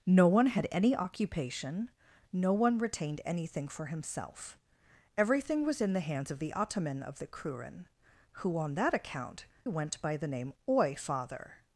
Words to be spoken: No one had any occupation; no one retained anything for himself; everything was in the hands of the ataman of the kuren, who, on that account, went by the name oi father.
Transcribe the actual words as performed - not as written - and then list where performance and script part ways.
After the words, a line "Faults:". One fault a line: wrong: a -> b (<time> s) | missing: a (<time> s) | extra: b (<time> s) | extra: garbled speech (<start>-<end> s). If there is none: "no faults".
No one had any occupation; no one retained anything for himself; everything was in the hands of the ataman of the kuren, who, on that account, went by the name oi father.
Faults:
no faults